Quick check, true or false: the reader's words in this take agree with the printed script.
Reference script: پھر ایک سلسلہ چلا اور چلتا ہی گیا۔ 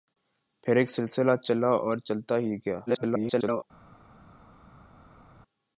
false